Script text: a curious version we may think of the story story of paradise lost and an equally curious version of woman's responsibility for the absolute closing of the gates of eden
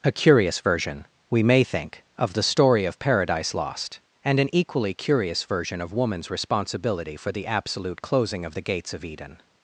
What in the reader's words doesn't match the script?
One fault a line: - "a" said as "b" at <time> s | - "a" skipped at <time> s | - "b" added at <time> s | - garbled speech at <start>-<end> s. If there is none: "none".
- "story" skipped at 2.9 s